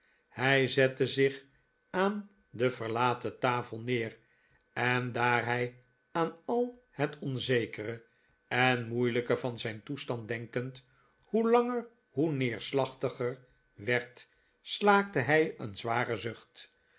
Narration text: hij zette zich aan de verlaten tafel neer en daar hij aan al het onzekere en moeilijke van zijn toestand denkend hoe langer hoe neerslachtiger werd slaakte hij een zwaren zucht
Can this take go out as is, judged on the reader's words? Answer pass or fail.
pass